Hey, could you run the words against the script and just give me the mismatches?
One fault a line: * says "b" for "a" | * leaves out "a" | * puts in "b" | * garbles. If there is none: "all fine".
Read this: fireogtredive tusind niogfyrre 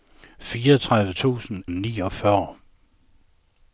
all fine